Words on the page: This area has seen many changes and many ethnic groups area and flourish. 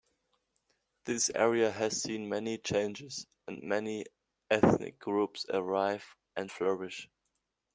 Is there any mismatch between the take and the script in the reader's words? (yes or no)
yes